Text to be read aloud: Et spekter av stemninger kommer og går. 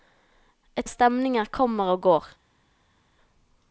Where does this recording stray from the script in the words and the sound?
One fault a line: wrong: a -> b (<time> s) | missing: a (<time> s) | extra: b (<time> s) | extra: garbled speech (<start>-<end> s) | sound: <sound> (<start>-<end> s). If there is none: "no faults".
missing: spekter (0.9 s)